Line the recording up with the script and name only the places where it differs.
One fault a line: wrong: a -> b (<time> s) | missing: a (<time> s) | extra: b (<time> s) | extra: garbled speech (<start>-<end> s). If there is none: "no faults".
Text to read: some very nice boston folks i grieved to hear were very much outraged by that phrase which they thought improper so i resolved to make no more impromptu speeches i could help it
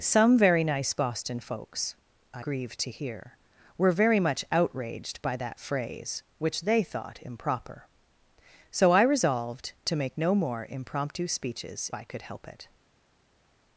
no faults